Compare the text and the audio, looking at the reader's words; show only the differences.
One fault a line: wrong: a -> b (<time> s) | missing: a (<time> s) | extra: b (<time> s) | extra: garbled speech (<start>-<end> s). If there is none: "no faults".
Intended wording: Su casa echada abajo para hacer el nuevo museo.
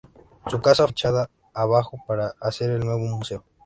no faults